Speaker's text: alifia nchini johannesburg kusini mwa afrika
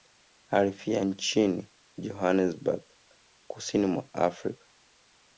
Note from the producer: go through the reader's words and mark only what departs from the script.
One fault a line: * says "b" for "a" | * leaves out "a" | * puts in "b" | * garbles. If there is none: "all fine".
all fine